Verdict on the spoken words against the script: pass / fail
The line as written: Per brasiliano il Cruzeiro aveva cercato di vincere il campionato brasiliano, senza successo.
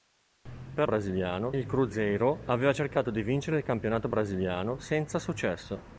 pass